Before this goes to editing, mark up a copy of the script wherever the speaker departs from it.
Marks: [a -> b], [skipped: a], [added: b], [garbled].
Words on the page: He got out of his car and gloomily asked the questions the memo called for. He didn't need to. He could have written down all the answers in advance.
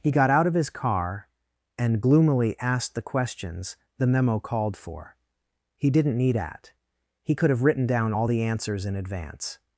He got out of his car and gloomily asked the questions the memo called for. He didn't need [to. -> at] He could have written down all the answers in advance.